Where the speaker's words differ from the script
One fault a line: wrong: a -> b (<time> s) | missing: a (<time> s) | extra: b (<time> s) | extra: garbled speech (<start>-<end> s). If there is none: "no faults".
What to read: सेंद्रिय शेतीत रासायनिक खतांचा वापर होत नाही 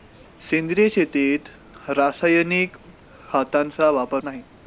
missing: होत (4.2 s)